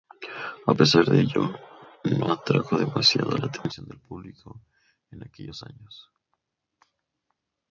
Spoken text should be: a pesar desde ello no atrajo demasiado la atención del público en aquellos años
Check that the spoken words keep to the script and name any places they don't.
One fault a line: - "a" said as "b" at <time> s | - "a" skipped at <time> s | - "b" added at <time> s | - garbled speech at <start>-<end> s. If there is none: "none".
- "desde" said as "de" at 1.1 s